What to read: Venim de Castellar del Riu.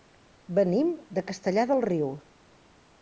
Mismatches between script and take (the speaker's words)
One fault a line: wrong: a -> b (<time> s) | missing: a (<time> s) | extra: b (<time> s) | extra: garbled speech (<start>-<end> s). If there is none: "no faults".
no faults